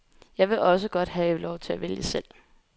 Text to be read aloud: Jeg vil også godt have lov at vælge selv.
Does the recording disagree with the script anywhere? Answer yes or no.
yes